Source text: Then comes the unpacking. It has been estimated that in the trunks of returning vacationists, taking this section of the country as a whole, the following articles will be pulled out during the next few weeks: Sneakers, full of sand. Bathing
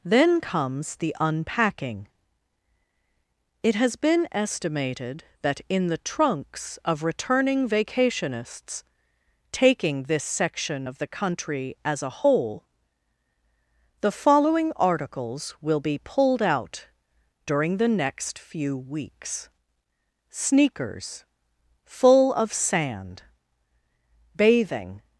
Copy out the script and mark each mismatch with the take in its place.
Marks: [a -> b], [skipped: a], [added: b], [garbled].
Then comes the unpacking. It has been estimated that in the trunks of returning vacationists, taking this section of the country as a whole, the following articles will be pulled out during the next few weeks: Sneakers, full of sand. Bathing